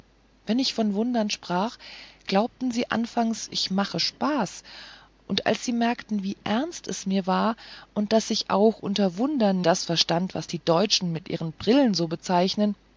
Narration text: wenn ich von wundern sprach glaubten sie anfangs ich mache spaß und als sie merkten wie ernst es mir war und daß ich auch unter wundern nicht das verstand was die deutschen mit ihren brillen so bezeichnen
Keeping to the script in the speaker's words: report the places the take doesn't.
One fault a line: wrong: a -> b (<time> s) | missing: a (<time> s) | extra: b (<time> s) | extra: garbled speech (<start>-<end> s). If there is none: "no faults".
missing: nicht (9.6 s)